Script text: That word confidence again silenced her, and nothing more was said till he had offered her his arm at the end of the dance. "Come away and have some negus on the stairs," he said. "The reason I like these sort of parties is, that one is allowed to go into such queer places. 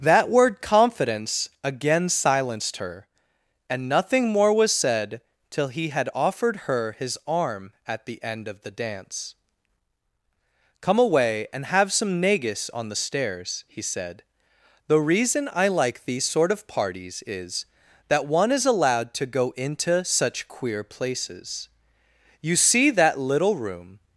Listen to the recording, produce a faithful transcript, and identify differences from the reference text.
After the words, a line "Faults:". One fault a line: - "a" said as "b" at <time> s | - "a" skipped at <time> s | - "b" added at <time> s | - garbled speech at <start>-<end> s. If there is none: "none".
That word confidence again silenced her, and nothing more was said till he had offered her his arm at the end of the dance. "Come away and have some negus on the stairs," he said. "The reason I like these sort of parties is, that one is allowed to go into such queer places. You see that little room
Faults:
- "You see that little room" added at 22.4 s